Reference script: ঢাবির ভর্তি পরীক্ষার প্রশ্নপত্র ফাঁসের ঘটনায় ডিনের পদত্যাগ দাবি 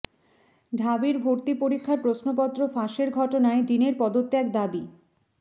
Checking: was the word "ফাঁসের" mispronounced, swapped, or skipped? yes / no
no